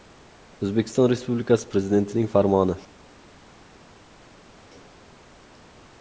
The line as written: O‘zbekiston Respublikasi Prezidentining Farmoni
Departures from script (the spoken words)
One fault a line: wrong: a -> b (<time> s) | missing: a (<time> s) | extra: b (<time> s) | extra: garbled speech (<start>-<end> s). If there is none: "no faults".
no faults